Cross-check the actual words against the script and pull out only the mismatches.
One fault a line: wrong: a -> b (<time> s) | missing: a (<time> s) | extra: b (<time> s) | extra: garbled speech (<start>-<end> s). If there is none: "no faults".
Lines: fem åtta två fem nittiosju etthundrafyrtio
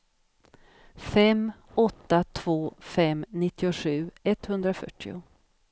no faults